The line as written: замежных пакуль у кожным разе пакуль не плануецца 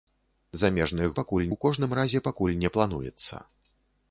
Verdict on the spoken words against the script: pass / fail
pass